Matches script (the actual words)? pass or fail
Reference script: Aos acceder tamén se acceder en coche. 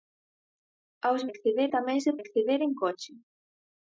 pass